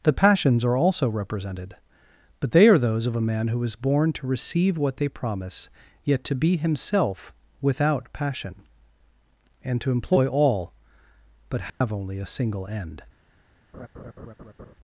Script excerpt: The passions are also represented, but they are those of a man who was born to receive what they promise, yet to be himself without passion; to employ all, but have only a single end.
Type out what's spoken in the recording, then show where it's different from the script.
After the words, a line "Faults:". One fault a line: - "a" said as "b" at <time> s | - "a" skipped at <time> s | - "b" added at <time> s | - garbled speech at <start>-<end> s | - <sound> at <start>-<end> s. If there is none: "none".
The passions are also represented, but they are those of a man who is born to receive what they promise, yet to be himself without passion; and to employ all, but have only a single end.
Faults:
- "was" said as "is" at 3.6 s
- "and" added at 9.6 s
- dropout at 11.7-11.8 s
- laugh at 13.7-14.7 s